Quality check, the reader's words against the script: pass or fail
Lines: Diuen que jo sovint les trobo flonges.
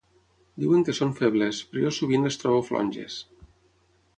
fail